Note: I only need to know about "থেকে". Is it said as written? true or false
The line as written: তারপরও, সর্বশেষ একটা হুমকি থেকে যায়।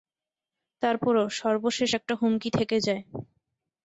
true